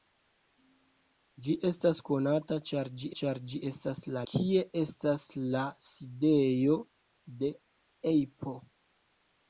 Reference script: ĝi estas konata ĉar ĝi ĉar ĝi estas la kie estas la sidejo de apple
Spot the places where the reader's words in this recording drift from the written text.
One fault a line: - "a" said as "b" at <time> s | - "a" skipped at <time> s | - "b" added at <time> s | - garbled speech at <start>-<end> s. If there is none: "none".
none